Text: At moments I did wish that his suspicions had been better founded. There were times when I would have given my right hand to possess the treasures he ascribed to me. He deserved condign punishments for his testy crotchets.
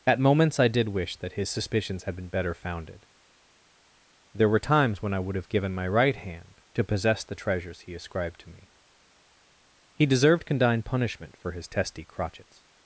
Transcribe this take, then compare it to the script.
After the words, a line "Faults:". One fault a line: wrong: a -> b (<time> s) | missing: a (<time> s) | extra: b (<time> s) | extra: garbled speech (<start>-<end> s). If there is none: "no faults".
At moments I did wish that his suspicions had been better founded. There were times when I would have given my right hand to possess the treasures he ascribed to me. He deserved condign punishment for his testy crotchets.
Faults:
wrong: punishments -> punishment (10.8 s)